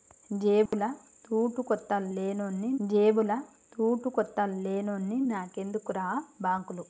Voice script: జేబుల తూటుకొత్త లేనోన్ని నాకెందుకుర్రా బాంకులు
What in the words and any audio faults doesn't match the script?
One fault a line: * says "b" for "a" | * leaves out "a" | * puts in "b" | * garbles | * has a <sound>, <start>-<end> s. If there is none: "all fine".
* has a dropout, 0.7-0.7 s
* puts in "జేబుల తూటుకొత్త లేనోన్ని"